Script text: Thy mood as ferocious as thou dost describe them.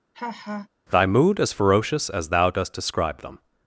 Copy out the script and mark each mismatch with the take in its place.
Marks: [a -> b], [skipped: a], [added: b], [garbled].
Thy mood as ferocious as thou dost describe them.